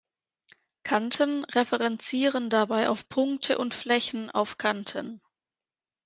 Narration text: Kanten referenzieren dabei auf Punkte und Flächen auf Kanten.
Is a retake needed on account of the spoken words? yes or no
no